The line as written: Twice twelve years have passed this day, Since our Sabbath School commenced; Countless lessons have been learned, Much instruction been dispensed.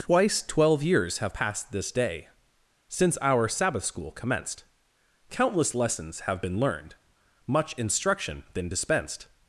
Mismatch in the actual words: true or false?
false